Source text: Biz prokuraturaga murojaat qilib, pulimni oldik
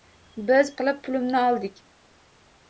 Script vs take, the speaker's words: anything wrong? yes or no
yes